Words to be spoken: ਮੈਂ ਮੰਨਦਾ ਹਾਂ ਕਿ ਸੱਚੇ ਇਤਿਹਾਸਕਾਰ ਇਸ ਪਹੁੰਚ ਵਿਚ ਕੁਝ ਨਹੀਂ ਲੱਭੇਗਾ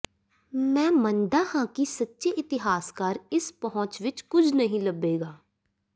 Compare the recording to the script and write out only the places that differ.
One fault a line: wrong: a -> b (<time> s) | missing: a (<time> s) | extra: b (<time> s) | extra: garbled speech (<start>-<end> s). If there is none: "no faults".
no faults